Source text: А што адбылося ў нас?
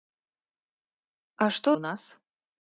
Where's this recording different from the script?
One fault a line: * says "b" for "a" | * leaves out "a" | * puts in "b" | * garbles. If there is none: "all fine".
* leaves out "адбылося"